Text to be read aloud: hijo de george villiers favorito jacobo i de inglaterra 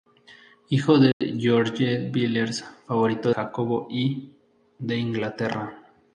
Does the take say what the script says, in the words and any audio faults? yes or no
no